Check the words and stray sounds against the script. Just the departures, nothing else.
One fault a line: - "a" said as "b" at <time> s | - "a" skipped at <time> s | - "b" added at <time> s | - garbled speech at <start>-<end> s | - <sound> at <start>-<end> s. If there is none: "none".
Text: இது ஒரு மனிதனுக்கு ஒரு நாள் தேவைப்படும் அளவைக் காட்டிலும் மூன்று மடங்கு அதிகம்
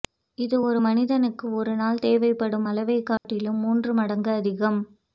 - dropout at 3.2-3.2 s